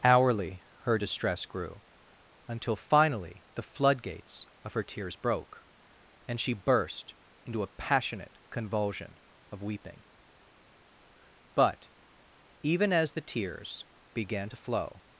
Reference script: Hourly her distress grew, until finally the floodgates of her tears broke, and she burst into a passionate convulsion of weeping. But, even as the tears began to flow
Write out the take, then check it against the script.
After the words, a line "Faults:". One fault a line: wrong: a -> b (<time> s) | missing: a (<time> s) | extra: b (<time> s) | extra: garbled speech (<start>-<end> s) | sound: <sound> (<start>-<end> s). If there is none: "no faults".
Hourly her distress grew, until finally the floodgates of her tears broke, and she burst into a passionate convulsion of weeping. But, even as the tears began to flow
Faults:
no faults